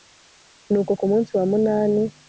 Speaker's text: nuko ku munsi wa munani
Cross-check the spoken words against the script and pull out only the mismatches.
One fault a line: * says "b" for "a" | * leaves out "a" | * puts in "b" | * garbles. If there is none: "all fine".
all fine